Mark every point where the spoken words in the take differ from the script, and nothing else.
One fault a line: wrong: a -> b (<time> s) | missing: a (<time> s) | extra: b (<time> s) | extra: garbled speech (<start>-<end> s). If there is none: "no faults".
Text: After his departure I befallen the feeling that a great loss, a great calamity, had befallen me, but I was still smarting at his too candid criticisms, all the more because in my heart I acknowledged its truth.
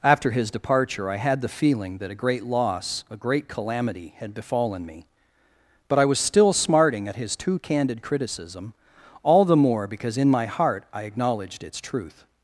wrong: befallen -> had (1.2 s)
wrong: criticisms -> criticism (8.0 s)